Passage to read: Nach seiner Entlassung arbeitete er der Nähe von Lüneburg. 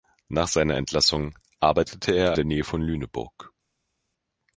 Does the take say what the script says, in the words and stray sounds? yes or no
yes